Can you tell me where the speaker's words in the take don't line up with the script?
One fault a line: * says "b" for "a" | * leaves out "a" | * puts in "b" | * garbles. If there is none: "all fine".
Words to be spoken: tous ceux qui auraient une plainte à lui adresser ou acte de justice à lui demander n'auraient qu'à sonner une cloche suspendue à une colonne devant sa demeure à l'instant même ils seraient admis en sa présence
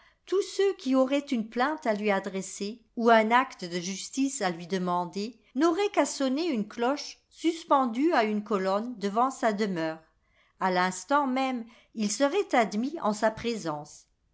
* puts in "un"